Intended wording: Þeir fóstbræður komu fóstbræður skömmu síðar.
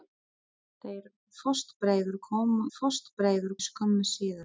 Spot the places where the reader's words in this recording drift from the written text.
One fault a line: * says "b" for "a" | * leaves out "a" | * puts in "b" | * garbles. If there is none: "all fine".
all fine